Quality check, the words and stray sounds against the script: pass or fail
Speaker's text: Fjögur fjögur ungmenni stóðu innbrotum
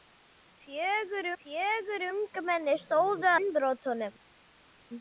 pass